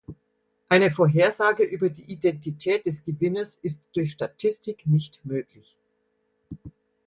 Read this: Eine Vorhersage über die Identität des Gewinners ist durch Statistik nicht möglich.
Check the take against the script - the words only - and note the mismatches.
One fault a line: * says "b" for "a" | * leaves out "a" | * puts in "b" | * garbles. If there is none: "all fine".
all fine